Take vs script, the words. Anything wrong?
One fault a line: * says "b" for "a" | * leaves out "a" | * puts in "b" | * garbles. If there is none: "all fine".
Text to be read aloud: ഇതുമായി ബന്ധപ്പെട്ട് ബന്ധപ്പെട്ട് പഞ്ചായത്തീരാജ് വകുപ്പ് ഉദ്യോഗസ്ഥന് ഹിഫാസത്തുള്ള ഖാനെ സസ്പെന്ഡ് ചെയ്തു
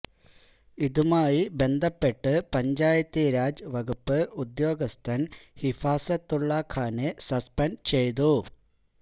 * leaves out "ബന്ധപ്പെട്ട്"